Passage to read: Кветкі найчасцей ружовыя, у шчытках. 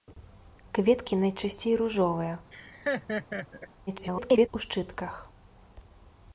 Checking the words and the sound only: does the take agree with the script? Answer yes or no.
no